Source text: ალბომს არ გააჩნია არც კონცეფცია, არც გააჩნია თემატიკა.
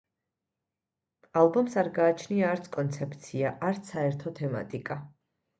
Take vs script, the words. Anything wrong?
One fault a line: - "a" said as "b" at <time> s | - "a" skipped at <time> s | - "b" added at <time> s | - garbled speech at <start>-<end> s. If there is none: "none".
- "გააჩნია" said as "საერთო" at 3.9 s